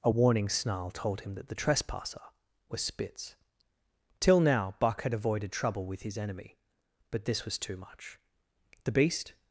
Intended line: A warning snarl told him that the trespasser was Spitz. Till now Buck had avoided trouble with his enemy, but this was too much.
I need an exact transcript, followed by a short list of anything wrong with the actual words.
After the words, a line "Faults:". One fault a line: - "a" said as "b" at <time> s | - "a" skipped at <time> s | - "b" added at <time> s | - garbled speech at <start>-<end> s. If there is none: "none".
A warning snarl told him that the trespasser was Spitz. Till now Buck had avoided trouble with his enemy, but this was too much. The beast
Faults:
- "The beast" added at 8.9 s